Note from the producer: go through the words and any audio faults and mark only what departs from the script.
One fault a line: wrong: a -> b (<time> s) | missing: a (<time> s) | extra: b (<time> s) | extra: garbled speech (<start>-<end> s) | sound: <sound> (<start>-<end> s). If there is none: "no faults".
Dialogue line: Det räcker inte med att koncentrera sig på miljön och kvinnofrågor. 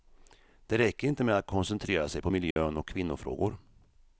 sound: dropout (2.5-2.6 s)